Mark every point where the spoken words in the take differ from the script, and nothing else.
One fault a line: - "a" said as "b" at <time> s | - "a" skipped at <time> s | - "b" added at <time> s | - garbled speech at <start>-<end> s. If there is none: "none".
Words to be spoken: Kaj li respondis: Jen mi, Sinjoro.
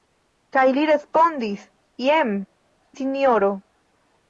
- "mi" skipped at 2.3 s